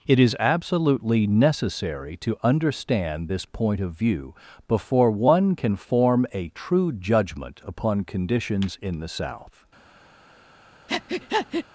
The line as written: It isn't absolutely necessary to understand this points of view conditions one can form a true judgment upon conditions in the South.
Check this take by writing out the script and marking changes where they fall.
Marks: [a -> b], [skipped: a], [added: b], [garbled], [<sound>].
It [isn't -> is] absolutely necessary to understand this [points -> point] of view [conditions -> before] one can form a true judgment upon conditions in the South. [breath]